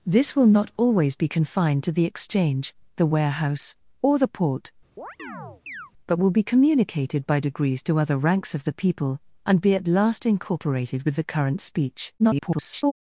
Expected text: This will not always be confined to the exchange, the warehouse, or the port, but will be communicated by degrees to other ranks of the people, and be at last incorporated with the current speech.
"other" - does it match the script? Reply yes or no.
yes